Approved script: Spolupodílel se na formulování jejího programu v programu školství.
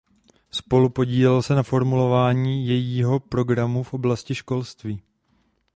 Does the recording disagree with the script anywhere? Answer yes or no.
yes